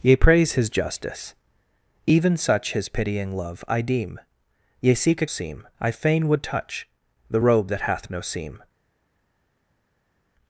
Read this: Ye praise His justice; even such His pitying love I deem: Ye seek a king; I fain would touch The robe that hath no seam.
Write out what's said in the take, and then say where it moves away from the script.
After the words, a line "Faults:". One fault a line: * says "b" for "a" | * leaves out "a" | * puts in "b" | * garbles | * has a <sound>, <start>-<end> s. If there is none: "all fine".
Ye praise His justice; even such His pitying love I deem: Ye seek a seam; I fain would touch The robe that hath no seam.
Faults:
* says "seam" for "king"